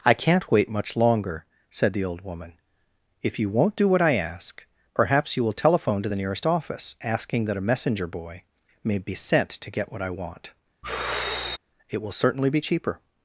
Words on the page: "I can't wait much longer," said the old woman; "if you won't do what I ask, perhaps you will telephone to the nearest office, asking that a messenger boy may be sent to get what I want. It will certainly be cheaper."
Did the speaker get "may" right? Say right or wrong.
right